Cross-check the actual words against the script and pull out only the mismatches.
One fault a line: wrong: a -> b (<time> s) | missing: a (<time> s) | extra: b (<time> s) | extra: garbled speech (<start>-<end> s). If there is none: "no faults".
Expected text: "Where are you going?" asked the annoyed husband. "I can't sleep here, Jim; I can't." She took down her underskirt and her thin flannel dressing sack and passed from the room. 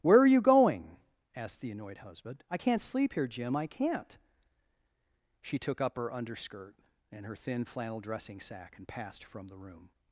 wrong: down -> up (5.8 s)